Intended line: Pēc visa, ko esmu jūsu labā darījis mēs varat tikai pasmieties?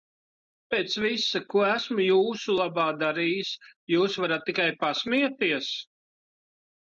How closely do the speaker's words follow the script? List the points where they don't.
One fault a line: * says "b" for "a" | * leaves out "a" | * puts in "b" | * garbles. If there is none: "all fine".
* says "jūs" for "mēs"